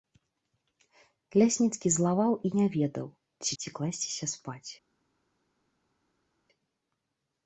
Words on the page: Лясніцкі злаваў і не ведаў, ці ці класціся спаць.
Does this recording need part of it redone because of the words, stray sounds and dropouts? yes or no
no